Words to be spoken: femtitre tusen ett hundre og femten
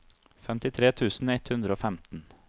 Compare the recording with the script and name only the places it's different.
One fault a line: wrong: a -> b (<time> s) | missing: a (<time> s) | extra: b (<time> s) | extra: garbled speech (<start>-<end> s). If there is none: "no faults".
no faults